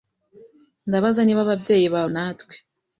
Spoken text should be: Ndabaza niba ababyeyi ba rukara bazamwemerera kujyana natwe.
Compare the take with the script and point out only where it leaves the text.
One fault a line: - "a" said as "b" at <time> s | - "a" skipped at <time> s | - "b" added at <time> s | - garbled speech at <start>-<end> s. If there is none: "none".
- "rukara bazamwemerera kujyana" skipped at 2.0 s